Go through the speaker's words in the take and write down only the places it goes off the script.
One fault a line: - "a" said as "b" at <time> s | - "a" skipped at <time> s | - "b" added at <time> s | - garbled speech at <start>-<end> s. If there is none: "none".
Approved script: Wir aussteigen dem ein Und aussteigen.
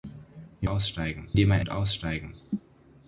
none